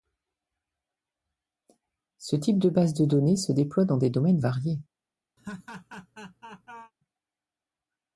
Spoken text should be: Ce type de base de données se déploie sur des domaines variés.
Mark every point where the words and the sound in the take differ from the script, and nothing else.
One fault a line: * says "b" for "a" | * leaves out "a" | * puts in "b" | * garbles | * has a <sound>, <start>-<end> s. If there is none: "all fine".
* says "dans" for "sur"
* has a laugh, 5.4-6.9 s